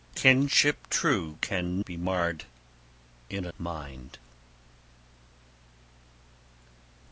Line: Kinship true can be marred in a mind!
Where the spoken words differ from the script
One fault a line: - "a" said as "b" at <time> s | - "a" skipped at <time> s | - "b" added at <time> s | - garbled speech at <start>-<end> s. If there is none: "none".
none